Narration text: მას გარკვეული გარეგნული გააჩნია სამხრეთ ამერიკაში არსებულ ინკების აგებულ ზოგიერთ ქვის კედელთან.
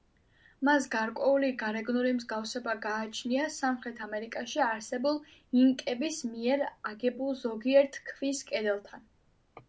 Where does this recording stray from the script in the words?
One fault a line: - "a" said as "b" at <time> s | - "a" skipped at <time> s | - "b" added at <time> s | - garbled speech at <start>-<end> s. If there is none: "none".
- "მსგავსება" added at 2.2 s
- "მიერ" added at 6.3 s